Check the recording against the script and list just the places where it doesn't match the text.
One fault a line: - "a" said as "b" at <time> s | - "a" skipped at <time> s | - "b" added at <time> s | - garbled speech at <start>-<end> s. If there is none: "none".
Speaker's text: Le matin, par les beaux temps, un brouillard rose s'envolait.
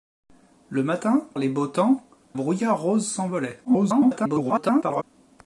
- "par" skipped at 1.2 s
- "un" skipped at 2.0 s
- garbled speech at 3.6-5.0 s